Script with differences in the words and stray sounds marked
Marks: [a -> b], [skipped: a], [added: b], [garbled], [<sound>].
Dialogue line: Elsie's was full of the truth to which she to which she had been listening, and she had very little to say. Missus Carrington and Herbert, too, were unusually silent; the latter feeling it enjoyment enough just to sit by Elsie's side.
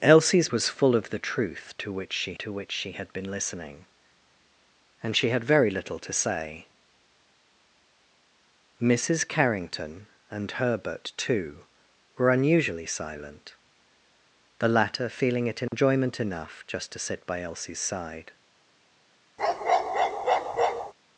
Elsie's was full of the truth to which she to which she had been listening, and she had very little to say. Missus Carrington and Herbert, too, were unusually silent; the latter feeling it enjoyment [dropout] enough just to sit by Elsie's side. [bark]